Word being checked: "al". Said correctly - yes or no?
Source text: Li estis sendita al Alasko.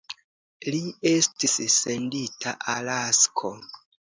no